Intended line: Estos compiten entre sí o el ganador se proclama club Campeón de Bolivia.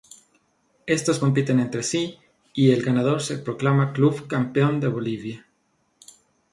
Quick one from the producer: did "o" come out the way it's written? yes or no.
no